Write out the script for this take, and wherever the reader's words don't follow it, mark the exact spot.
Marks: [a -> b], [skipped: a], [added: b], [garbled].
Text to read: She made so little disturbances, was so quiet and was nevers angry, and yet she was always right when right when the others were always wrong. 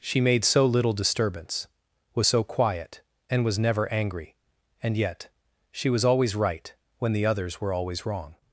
She made so little [disturbances, -> disturbance] was so quiet and was [nevers -> never] angry, and yet she was always right when [skipped: right when] the others were always wrong.